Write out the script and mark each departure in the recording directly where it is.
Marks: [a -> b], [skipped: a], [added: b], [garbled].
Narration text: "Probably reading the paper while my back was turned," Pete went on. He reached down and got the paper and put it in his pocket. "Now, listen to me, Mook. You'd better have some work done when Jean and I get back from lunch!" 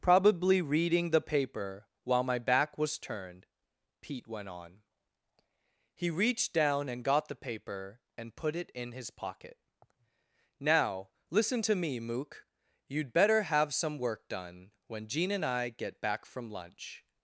"Probably reading the paper while my back was turned," Pete went on. He reached down and got the paper and put it in his pocket. "Now, listen to me, Mook. You'd better have some work done when Jean and I get back from lunch!"